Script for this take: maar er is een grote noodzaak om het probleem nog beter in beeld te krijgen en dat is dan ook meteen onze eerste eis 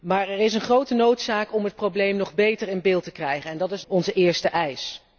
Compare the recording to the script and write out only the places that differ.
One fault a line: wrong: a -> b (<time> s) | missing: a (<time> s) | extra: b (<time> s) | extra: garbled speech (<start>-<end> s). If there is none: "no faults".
missing: dan ook meteen (3.8 s)